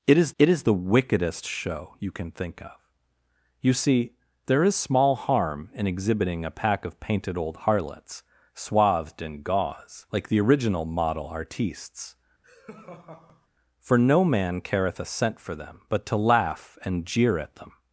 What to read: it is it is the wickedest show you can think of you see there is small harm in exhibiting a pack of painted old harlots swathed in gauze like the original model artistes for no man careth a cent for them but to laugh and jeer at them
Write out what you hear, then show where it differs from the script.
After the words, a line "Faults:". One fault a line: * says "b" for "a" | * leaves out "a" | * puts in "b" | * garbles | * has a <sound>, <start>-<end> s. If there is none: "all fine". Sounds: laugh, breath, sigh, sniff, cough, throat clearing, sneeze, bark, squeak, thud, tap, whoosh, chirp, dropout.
it is it is the wickedest show you can think of you see there is small harm in exhibiting a pack of painted old harlots swathed in gauze like the original model artistes for no man careth a cent for them but to laugh and jeer at them
Faults:
* has a laugh, 12.4-13.5 s